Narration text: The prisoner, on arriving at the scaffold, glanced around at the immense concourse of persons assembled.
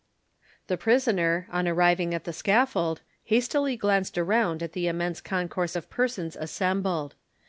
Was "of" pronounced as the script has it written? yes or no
yes